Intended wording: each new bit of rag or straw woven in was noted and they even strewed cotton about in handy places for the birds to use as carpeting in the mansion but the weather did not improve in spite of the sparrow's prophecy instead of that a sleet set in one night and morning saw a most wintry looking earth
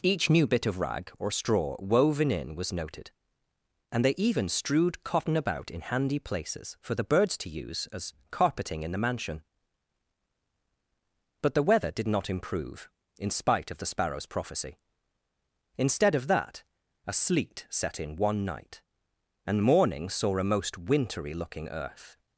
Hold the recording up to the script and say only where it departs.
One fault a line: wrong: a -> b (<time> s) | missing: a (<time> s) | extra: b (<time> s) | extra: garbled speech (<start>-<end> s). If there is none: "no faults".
no faults